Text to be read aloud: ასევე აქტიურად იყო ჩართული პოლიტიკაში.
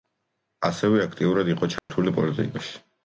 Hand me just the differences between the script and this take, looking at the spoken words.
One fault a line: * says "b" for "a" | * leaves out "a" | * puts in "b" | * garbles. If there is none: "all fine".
all fine